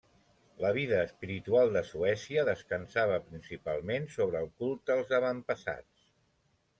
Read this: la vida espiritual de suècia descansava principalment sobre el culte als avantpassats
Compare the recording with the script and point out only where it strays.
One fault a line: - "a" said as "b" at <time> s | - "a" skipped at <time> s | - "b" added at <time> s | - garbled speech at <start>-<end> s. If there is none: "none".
none